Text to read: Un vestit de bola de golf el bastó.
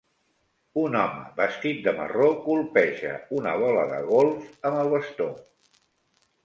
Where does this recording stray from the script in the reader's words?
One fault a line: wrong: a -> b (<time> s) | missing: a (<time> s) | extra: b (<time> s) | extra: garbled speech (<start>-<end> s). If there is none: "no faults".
extra: home (1.0 s)
extra: marró colpeja una (2.0 s)
extra: amb (4.7 s)